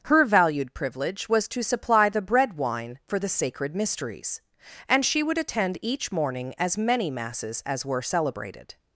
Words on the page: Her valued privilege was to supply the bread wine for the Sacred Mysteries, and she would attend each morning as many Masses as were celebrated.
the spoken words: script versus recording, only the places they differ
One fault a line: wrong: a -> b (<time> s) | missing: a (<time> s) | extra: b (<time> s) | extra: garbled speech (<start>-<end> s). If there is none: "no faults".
no faults